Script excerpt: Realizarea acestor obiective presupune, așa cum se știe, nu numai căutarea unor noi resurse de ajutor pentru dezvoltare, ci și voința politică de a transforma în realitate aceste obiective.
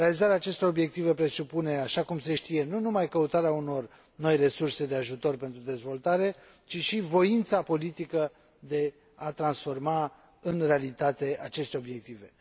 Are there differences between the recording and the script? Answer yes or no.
no